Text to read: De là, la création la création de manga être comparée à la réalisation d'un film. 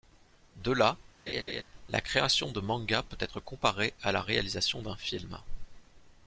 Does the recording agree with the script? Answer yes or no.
no